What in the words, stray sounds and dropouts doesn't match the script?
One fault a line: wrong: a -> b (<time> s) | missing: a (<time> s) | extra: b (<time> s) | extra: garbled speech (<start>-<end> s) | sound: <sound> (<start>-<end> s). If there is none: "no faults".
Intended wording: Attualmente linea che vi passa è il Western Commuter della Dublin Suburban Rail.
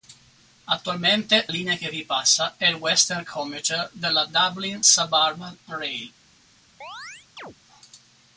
sound: chirp (6.8-7.6 s)